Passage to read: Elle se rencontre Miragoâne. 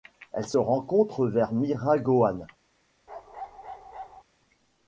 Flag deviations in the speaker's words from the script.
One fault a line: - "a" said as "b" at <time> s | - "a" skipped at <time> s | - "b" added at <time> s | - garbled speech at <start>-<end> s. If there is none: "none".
- "vers" added at 1.3 s